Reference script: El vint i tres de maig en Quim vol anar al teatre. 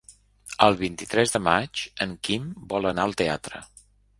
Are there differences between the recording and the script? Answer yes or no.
no